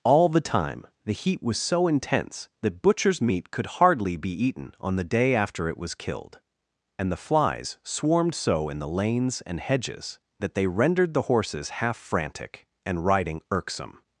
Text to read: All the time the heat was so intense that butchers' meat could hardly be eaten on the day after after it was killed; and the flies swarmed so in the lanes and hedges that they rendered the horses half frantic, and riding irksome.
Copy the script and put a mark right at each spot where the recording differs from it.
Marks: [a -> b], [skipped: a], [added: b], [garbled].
All the time the heat was so intense that butchers' meat could hardly be eaten on the day after [skipped: after] it was killed; and the flies swarmed so in the lanes and hedges that they rendered the horses half frantic, and riding irksome.